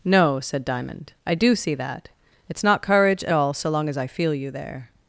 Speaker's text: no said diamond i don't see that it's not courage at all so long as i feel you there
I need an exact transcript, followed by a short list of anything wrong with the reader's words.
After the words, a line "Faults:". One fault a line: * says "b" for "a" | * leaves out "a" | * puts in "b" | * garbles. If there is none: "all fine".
no said diamond i do see that it's not courage at all so long as i feel you there
Faults:
* says "do" for "don't"